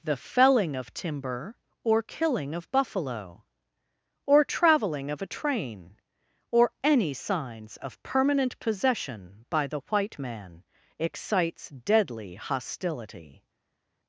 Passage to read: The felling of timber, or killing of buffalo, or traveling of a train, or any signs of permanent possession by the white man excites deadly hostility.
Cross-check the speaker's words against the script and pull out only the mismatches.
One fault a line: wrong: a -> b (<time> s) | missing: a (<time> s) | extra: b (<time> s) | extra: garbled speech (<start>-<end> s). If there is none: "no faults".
no faults